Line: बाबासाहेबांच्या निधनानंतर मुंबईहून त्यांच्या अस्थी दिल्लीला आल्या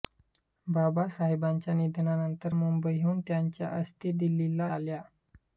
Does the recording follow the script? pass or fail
pass